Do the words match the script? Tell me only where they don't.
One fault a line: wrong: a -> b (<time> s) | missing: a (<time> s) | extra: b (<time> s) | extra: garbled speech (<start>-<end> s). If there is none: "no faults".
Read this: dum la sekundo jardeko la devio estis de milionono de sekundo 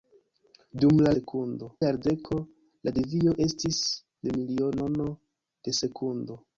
no faults